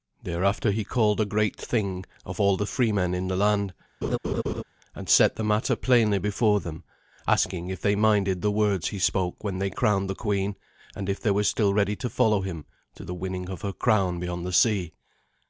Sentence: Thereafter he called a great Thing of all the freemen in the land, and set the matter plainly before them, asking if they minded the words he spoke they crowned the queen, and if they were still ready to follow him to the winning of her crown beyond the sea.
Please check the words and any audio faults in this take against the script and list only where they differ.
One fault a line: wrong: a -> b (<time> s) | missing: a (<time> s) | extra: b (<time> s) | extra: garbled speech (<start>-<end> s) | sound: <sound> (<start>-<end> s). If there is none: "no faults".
sound: laugh (4.0-4.6 s)
extra: when (9.4 s)